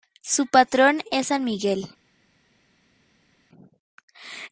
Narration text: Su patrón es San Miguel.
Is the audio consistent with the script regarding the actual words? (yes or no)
yes